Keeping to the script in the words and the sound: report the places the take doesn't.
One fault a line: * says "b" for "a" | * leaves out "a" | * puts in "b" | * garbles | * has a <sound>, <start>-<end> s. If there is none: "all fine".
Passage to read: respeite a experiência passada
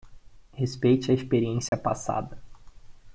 * has a dropout, 1.7-1.7 s